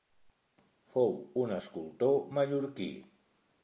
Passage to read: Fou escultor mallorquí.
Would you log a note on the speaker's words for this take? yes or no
yes